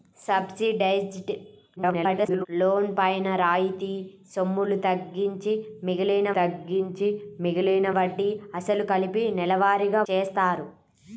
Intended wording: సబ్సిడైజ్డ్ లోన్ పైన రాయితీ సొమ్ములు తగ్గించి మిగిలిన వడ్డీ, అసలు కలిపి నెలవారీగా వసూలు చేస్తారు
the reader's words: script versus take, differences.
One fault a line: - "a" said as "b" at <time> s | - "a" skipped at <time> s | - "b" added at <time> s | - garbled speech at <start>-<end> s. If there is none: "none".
- garbled speech at 1.8-2.5 s
- "తగ్గించి మిగిలిన" added at 6.3 s
- "వసూలు" skipped at 10.0 s